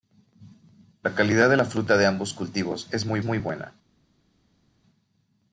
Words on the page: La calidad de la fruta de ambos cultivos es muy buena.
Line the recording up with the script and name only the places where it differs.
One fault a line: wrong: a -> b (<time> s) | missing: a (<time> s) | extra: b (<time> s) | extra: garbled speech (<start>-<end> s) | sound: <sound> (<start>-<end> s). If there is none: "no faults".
extra: muy (3.2 s)